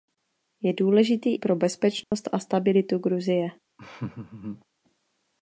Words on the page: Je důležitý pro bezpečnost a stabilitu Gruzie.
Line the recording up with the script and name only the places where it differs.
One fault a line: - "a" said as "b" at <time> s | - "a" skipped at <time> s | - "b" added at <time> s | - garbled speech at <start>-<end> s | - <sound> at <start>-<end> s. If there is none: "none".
- dropout at 2.0-2.1 s
- laugh at 3.8-4.7 s